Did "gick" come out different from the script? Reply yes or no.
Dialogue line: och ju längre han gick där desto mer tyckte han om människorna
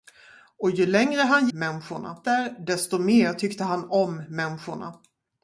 yes